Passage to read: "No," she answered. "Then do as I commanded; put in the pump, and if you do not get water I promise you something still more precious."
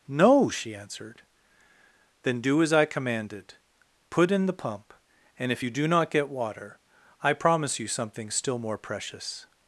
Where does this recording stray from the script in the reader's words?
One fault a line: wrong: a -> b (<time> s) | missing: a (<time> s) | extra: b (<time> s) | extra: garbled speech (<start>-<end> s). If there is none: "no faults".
no faults